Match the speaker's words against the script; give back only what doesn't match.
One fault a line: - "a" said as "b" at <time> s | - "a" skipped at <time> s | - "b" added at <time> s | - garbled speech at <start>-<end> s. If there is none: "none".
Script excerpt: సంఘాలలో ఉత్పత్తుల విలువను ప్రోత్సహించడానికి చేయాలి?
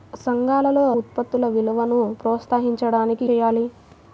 none